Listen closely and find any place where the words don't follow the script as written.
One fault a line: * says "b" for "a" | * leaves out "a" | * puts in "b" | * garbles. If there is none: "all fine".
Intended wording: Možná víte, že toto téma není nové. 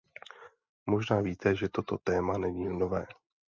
all fine